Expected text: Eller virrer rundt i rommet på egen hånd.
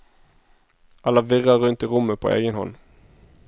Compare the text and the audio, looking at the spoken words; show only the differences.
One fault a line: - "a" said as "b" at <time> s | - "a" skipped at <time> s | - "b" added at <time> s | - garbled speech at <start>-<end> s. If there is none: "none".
none